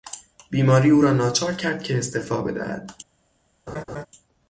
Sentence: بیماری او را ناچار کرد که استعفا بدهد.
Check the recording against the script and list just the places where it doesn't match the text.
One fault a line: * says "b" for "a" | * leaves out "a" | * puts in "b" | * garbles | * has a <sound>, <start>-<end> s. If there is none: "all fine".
* has a laugh, 3.7-4.1 s